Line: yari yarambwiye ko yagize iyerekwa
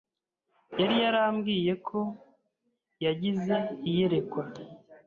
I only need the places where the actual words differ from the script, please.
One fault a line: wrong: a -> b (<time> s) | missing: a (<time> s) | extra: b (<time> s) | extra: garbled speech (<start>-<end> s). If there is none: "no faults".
no faults